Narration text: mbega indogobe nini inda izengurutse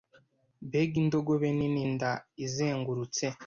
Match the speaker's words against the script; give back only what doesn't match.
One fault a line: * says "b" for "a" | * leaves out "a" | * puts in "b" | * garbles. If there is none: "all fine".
all fine